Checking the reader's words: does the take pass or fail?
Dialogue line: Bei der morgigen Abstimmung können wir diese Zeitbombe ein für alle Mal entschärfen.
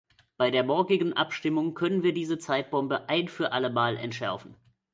pass